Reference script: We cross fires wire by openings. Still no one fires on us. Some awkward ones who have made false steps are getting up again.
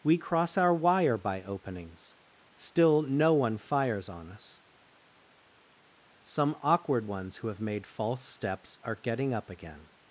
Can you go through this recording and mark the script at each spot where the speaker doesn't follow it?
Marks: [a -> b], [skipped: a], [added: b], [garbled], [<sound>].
We cross [fires -> our] wire by openings. Still no one fires on us. Some awkward ones who have made false steps are getting up again.